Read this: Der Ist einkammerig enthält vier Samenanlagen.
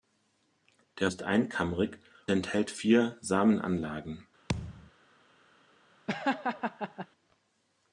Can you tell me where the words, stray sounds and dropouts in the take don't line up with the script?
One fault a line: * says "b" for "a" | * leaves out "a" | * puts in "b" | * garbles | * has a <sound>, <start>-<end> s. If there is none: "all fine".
* has a thud, 4.5-4.9 s
* has a laugh, 6.1-7.1 s